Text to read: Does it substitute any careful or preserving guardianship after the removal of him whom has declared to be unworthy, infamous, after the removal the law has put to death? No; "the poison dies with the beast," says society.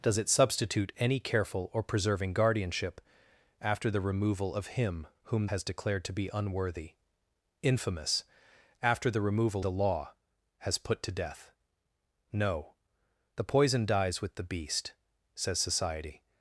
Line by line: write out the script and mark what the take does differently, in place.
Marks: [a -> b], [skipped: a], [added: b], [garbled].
Does it substitute any careful or preserving guardianship after the removal of him whom has declared to be unworthy, infamous, after the removal the law has put to death? No; "the poison dies with the beast," says society.